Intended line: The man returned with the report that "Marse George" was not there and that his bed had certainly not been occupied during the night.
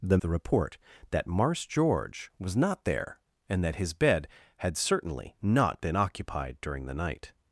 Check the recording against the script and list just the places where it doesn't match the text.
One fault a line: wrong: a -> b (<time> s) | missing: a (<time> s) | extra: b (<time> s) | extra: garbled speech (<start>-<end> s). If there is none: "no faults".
missing: man returned with (0.2 s)